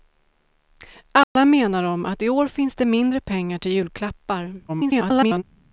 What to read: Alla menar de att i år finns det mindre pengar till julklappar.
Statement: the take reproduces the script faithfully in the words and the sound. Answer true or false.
false